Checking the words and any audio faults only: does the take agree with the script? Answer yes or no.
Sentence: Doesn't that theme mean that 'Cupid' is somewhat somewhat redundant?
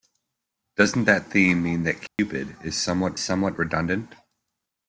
no